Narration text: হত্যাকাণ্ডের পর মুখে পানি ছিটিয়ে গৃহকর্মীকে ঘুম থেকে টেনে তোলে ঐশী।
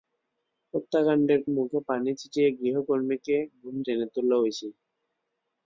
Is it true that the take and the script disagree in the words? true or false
true